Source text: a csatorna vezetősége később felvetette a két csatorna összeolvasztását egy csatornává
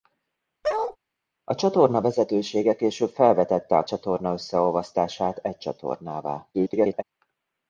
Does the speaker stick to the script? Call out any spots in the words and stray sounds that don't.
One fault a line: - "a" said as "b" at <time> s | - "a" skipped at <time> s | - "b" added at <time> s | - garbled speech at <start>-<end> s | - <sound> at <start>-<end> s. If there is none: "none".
- bark at 0.6-1.0 s
- "két" skipped at 3.9 s
- garbled speech at 6.5-7.0 s